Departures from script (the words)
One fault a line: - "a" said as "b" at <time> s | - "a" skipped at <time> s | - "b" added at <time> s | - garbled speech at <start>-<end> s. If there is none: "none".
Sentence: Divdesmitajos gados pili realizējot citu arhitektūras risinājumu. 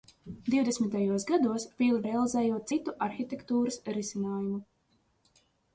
none